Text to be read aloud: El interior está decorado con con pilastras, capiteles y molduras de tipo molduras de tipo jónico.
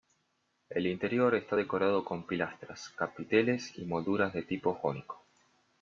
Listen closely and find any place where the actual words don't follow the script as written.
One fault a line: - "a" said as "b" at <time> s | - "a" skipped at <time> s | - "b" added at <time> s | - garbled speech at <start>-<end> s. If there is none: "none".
- "con" skipped at 2.3 s
- "molduras de tipo" skipped at 4.7 s